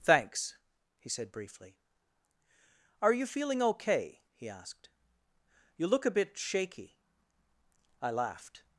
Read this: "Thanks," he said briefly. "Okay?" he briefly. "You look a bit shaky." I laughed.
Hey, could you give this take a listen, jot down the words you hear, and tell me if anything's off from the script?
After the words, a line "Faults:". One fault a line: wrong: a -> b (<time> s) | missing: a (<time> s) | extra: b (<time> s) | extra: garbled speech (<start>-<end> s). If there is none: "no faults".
"Thanks," he said briefly. "Are you feeling okay?" he asked. "You look a bit shaky." I laughed.
Faults:
extra: Are you feeling (3.0 s)
wrong: briefly -> asked (4.5 s)